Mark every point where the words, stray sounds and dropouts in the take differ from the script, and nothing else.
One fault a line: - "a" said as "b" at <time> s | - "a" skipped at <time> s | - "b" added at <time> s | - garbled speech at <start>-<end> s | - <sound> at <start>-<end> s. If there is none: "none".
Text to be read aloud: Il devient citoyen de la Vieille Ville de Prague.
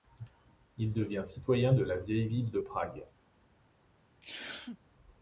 - sneeze at 4.2-4.8 s